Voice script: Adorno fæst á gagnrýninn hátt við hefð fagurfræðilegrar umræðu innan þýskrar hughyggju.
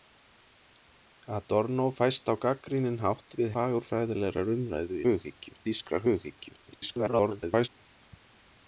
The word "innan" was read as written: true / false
false